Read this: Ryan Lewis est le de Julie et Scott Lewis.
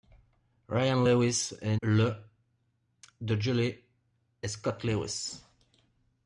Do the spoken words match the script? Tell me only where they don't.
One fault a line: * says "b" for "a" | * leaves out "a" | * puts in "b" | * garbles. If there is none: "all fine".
all fine